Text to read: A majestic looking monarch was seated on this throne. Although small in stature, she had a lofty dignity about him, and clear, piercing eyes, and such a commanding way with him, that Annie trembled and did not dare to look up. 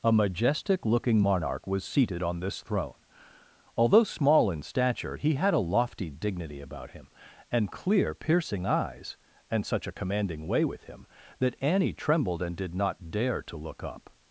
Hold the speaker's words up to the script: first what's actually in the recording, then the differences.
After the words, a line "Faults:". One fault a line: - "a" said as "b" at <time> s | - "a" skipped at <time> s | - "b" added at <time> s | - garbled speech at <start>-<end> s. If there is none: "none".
A majestic looking monarch was seated on this throne. Although small in stature, he had a lofty dignity about him, and clear, piercing eyes, and such a commanding way with him, that Annie trembled and did not dare to look up.
Faults:
- "she" said as "he" at 5.2 s